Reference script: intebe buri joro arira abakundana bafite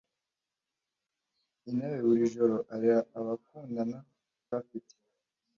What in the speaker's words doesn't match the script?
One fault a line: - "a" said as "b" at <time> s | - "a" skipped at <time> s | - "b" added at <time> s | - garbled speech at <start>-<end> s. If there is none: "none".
none